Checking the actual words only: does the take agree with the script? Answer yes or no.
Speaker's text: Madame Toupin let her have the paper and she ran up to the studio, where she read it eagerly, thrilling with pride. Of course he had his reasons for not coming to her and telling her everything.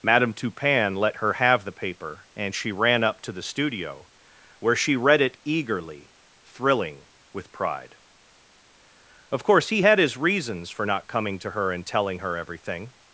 yes